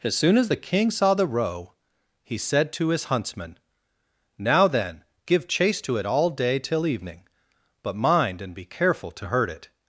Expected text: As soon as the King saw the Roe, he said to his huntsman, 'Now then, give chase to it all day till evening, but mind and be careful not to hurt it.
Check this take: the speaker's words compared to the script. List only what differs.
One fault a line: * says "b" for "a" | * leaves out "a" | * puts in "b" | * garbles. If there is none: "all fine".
* leaves out "not"